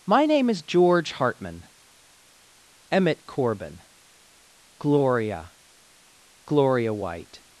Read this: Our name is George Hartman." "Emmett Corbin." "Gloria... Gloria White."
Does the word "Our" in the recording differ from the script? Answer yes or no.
yes